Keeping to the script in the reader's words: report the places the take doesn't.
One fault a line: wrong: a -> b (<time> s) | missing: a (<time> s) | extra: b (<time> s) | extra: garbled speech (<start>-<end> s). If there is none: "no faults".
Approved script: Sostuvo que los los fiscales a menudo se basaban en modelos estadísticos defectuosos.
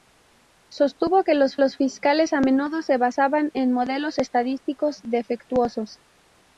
no faults